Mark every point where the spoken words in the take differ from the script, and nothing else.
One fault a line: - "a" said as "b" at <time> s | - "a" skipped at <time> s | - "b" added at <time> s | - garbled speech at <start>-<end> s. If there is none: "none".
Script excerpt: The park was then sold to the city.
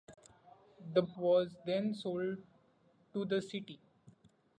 - "park" skipped at 1.0 s